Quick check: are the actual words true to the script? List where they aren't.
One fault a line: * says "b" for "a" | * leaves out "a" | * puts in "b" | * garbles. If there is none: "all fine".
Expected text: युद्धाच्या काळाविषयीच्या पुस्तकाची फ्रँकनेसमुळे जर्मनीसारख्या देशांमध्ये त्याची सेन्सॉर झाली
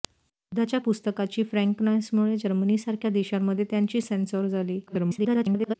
* leaves out "काळाविषयीच्या"
* garbles